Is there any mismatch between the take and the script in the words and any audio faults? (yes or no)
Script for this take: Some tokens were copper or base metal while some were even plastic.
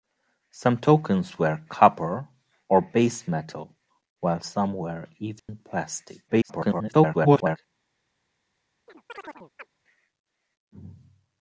yes